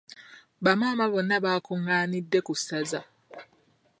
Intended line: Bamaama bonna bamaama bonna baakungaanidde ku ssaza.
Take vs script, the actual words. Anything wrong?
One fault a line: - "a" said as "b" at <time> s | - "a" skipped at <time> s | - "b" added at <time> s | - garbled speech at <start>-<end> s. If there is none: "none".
- "bamaama bonna" skipped at 1.4 s